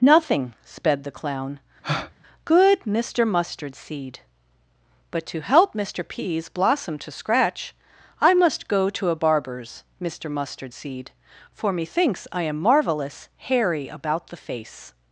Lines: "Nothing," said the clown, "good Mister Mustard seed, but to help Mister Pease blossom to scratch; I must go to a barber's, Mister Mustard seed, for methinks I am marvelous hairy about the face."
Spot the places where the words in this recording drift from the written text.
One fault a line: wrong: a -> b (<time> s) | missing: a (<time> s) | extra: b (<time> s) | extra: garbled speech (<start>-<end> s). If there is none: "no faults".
wrong: said -> sped (0.6 s)